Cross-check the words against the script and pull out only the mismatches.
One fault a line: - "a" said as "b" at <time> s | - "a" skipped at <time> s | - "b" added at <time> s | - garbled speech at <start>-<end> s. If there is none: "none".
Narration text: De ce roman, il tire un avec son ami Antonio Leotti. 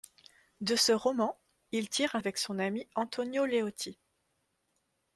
none